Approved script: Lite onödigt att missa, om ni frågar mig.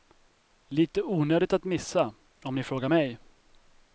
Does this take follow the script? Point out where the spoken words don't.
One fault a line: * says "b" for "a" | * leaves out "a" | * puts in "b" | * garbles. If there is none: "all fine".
all fine